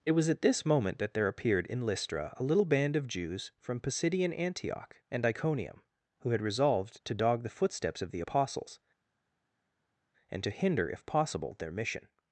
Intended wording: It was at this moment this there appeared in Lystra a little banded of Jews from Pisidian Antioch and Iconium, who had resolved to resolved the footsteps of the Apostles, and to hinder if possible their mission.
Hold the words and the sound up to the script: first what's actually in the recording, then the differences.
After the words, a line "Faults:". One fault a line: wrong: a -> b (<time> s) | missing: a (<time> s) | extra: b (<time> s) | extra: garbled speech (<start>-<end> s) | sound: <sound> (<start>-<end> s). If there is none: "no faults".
It was at this moment that there appeared in Lystra a little band of Jews from Pisidian Antioch and Iconium, who had resolved to dog the footsteps of the Apostles, and to hinder if possible their mission.
Faults:
wrong: this -> that (1.0 s)
wrong: banded -> band (2.6 s)
wrong: resolved -> dog (7.1 s)